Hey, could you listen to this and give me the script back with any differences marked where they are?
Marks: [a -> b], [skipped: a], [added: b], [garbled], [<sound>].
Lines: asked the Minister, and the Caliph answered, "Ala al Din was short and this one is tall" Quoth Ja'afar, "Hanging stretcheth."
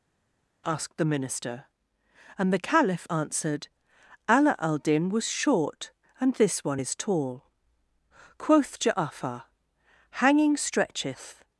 asked the Minister, and the Caliph answered, "Ala al Din was short and this one is tall" Quoth Ja'afar, "Hanging stretcheth."